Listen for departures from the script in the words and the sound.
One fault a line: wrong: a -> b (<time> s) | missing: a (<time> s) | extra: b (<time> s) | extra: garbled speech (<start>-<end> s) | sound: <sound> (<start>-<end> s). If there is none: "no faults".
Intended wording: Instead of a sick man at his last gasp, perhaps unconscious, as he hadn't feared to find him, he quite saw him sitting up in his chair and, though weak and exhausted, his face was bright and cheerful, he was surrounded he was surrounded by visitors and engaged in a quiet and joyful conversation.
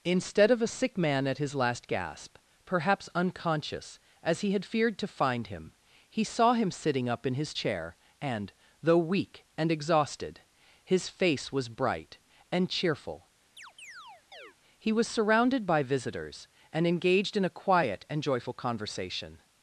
wrong: hadn't -> had (4.5 s)
missing: quite (6.2 s)
sound: chirp (13.6-14.6 s)
missing: he was surrounded (15.7 s)